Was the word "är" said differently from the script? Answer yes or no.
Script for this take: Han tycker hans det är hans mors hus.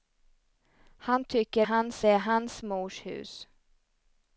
no